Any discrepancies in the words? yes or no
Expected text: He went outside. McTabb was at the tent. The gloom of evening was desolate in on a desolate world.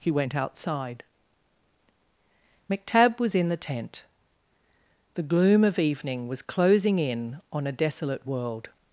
yes